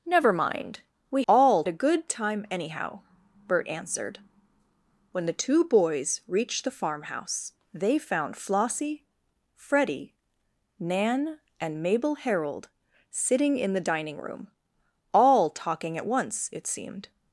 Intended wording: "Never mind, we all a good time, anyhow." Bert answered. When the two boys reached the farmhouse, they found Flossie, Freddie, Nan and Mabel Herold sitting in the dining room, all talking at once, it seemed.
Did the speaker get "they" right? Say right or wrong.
right